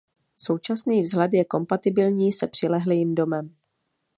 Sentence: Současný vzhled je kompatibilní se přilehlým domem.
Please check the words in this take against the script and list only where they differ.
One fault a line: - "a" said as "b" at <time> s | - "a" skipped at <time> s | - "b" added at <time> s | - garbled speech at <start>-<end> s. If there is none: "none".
none